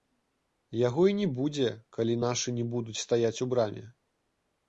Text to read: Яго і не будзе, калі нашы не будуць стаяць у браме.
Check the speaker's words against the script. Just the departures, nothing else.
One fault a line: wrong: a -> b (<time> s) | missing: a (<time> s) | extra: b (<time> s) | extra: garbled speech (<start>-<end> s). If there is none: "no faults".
no faults